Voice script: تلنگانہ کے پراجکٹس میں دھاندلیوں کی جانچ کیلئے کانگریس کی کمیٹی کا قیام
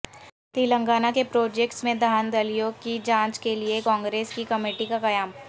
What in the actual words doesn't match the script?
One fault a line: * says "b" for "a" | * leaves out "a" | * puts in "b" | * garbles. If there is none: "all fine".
all fine